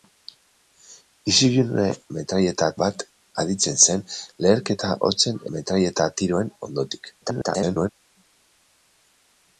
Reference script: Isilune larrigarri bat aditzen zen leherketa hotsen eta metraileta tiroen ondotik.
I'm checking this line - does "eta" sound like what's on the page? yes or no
no